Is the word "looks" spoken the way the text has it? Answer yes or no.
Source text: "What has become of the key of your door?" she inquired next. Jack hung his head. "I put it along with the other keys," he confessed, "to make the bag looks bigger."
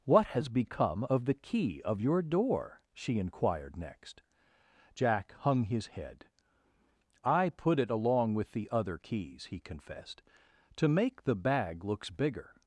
yes